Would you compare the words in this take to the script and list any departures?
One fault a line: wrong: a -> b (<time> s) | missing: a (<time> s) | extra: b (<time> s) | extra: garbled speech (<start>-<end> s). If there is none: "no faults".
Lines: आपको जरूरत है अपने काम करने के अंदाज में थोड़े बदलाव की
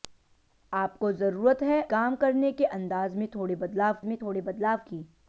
missing: अपने (1.8 s)
extra: में थोड़े बदलाव (4.1 s)